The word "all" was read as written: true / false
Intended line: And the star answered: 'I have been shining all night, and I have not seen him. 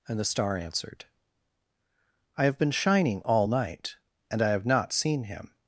true